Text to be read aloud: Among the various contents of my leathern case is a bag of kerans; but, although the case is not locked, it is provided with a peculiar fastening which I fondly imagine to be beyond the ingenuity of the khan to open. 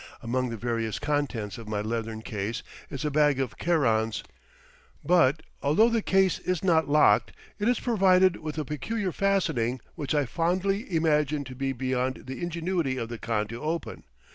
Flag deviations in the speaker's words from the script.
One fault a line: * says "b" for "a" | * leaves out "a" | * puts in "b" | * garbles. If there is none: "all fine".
all fine